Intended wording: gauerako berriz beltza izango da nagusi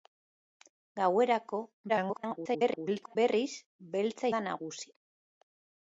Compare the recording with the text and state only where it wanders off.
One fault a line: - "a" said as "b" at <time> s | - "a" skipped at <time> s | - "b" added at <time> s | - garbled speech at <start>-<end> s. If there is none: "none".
- garbled speech at 1.9-3.2 s
- "izango" skipped at 4.3 s